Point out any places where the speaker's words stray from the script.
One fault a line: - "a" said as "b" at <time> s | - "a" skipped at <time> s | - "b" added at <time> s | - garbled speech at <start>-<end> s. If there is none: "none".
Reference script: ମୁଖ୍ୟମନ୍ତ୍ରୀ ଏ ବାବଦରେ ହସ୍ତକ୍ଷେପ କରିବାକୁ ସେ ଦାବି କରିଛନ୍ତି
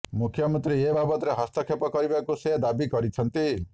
none